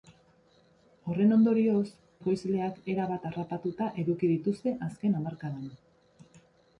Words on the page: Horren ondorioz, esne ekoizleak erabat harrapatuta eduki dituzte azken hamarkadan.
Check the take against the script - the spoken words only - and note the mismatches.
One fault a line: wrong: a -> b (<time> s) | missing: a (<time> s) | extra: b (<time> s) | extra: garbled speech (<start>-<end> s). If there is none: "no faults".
missing: esne (1.8 s)